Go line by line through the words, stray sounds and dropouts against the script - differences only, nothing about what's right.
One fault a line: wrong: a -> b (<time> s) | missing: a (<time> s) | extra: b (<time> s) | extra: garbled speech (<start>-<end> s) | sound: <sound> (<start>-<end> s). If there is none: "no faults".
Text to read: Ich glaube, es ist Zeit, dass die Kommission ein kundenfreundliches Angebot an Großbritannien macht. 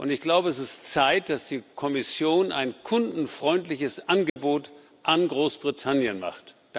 sound: dropout (4.3-4.4 s)